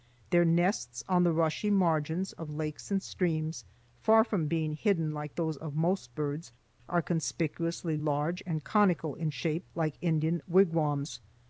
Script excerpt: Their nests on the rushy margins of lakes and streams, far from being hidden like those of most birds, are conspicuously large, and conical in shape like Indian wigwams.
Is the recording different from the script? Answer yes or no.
no